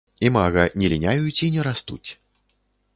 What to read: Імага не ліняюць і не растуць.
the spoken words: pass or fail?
pass